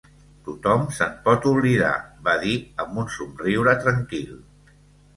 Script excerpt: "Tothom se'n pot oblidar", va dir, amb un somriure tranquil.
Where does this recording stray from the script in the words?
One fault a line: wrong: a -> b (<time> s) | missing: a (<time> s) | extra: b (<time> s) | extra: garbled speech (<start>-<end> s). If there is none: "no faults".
no faults